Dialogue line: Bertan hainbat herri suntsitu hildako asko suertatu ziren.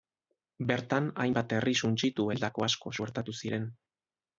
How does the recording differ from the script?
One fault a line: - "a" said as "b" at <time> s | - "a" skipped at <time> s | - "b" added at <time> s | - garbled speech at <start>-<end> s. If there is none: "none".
none